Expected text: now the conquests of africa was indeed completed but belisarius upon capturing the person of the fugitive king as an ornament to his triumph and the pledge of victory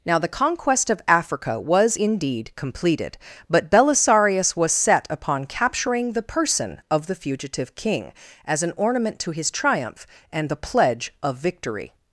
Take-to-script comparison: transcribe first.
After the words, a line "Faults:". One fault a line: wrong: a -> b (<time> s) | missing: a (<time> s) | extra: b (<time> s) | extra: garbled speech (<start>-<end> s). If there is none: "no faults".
now the conquest of africa was indeed completed but belisarius was set upon capturing the person of the fugitive king as an ornament to his triumph and the pledge of victory
Faults:
wrong: conquests -> conquest (0.3 s)
extra: was set (4.6 s)